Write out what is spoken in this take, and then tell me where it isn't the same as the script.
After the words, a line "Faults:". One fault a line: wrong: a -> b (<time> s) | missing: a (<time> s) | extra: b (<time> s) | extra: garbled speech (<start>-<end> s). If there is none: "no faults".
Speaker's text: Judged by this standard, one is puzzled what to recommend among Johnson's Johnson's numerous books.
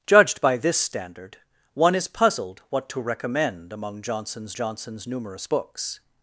Judged by this standard, one is puzzled what to recommend among Johnson's Johnson's numerous books.
Faults:
no faults